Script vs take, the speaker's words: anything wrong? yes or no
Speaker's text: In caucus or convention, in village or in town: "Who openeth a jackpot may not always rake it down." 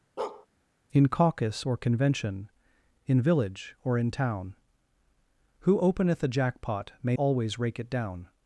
yes